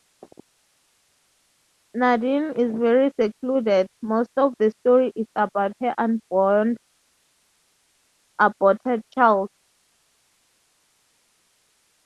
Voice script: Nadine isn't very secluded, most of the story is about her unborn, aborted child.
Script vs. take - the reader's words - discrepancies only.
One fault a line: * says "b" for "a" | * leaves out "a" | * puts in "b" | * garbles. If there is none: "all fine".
* says "is" for "isn't"